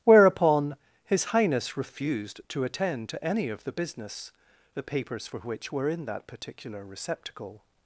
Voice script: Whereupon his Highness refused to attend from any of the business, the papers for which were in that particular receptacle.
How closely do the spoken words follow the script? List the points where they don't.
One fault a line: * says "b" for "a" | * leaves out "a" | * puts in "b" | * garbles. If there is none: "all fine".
* says "to" for "from"